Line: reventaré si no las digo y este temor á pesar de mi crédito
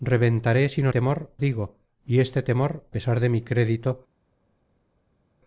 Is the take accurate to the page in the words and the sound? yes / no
no